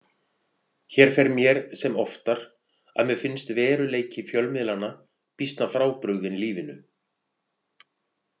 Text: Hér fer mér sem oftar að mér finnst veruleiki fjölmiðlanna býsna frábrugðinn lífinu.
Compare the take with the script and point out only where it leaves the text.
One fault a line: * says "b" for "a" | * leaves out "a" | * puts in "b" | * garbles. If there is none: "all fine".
all fine